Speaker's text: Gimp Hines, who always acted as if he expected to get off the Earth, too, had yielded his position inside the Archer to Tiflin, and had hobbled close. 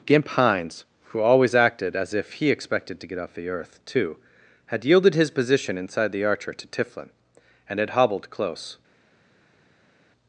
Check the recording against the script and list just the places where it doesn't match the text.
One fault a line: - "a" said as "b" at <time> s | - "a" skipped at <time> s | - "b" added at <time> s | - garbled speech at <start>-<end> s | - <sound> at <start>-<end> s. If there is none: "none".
none